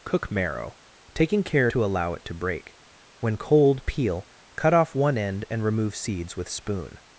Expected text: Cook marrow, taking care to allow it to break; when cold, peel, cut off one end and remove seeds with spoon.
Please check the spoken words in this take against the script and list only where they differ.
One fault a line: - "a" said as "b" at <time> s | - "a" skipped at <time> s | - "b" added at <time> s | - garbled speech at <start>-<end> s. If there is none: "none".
none